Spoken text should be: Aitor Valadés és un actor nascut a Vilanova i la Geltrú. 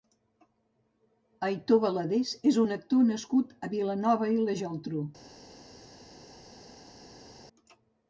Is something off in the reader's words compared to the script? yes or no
no